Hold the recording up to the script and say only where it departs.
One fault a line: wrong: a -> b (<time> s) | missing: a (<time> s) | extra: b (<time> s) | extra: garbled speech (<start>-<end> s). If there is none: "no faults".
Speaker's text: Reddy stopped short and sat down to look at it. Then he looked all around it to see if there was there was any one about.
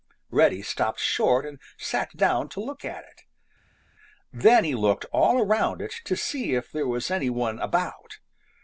missing: there was (7.1 s)